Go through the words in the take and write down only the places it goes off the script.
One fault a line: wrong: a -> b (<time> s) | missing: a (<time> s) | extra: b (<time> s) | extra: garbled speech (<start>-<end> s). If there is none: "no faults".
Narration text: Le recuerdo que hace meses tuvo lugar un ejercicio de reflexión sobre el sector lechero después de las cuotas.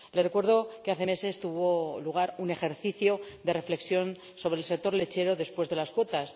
no faults